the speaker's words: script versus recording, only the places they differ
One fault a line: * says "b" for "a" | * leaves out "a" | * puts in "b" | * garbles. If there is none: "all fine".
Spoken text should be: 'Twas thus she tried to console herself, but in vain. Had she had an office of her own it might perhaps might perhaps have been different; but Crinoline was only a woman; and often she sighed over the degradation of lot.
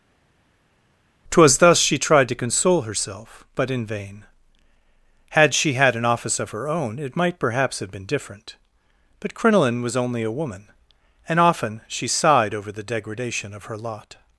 * leaves out "might perhaps"
* puts in "her"